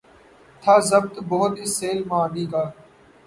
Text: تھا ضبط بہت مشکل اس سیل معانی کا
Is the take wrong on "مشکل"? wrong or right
wrong